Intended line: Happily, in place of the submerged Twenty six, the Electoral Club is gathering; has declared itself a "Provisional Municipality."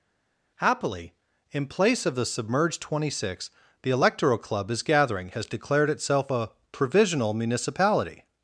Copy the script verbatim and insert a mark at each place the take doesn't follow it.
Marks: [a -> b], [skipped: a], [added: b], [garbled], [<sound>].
Happily, in place of the submerged Twenty six, the Electoral Club is gathering; has declared itself a "Provisional Municipality."